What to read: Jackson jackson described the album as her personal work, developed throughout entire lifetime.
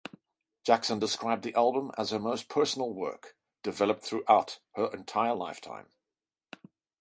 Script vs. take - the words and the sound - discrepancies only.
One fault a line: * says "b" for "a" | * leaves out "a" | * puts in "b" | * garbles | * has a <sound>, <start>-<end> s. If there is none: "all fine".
* leaves out "jackson"
* puts in "most"
* puts in "her"